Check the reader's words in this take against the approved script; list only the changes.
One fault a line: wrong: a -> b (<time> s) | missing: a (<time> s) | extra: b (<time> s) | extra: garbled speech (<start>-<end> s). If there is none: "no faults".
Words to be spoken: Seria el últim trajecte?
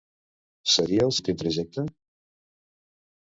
no faults